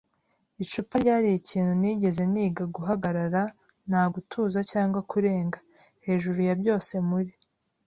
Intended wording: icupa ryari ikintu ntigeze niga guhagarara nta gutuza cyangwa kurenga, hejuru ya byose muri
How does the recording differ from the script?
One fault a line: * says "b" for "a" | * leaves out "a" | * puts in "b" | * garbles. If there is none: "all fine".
all fine